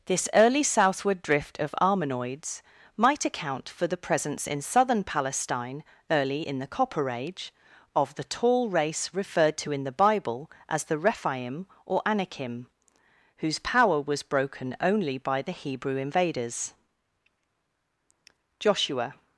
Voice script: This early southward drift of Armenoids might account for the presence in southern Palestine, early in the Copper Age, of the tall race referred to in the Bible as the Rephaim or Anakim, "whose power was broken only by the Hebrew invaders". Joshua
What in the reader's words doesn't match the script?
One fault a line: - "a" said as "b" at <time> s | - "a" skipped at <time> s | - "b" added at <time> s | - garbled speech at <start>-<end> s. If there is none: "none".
none